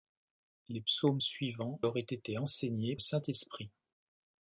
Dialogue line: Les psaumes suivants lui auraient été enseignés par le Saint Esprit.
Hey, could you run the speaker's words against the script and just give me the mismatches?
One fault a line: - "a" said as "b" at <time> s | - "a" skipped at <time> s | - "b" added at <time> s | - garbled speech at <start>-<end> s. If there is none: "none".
- "lui" skipped at 1.8 s
- "par le" skipped at 2.9 s